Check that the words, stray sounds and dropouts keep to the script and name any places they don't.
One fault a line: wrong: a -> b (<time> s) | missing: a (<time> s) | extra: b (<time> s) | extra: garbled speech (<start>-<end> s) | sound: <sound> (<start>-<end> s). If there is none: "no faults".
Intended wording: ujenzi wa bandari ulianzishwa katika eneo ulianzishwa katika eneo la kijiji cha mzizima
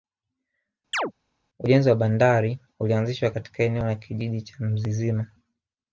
sound: chirp (0.9-1.1 s)
missing: ulianzishwa katika eneo (3.8 s)